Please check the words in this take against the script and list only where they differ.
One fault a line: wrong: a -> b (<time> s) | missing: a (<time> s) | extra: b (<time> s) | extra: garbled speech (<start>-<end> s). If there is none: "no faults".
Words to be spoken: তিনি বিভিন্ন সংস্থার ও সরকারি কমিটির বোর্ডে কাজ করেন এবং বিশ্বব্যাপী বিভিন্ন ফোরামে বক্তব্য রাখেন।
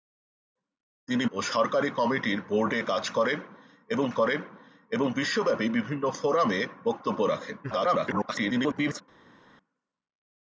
missing: বিভিন্ন সংস্থার (1.2 s)
extra: করেন এবং (4.1 s)
extra: garbled speech (7.6-9.0 s)